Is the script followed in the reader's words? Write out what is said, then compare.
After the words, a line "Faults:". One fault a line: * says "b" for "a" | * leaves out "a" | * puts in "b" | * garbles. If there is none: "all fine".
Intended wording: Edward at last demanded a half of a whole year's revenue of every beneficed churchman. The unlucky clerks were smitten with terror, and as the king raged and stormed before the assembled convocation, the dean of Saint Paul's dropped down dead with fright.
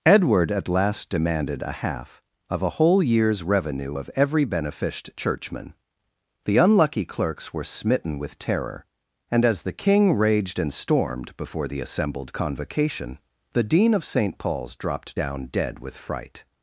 Edward at last demanded a half of a whole year's revenue of every beneficed churchman. The unlucky clerks were smitten with terror, and as the king raged and stormed before the assembled convocation, the dean of Saint Paul's dropped down dead with fright.
Faults:
all fine